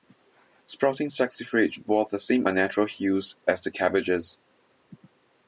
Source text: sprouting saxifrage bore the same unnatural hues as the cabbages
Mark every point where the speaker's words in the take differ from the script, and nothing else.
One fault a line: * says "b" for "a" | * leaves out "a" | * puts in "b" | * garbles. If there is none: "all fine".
all fine